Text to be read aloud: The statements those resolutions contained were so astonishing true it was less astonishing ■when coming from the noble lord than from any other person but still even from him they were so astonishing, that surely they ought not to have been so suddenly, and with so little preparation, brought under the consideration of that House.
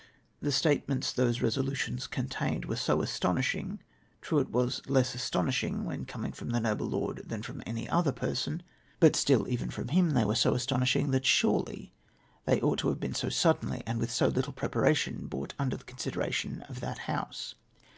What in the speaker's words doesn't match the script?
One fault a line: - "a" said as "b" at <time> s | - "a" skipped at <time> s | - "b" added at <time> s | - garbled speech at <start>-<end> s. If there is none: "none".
- "not" skipped at 12.8 s